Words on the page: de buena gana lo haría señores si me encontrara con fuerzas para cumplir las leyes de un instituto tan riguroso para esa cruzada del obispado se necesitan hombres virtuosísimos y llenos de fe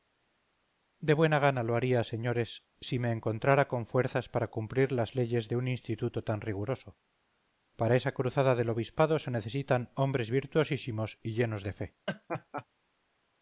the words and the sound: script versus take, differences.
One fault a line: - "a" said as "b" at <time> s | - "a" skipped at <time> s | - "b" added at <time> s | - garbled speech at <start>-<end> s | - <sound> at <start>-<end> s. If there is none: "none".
- laugh at 12.1-12.7 s